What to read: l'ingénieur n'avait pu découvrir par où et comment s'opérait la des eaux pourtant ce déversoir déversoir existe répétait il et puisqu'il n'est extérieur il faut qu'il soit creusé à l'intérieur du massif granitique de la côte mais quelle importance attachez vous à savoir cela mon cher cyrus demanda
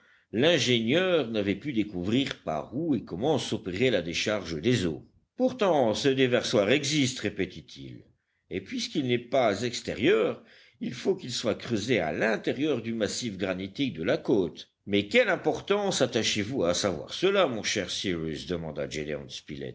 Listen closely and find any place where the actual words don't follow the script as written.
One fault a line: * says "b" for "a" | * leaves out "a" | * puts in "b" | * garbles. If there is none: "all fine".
* puts in "décharge"
* leaves out "déversoir"
* puts in "pas"